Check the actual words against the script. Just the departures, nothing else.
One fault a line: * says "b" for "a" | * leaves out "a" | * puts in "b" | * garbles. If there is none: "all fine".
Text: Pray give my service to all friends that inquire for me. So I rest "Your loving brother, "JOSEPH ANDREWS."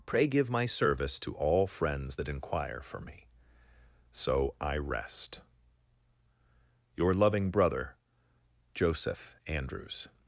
all fine